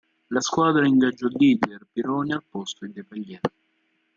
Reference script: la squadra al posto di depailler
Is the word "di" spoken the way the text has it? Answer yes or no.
yes